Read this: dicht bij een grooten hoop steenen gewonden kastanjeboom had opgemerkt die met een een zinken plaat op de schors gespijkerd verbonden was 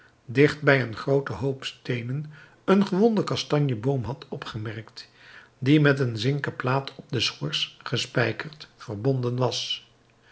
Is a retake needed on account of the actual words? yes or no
yes